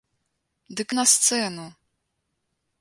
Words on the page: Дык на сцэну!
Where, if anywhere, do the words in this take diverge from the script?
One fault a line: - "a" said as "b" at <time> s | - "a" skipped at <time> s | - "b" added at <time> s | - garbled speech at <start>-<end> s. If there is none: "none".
none